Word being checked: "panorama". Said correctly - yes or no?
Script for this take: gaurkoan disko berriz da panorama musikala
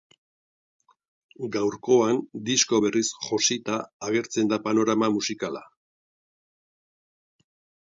yes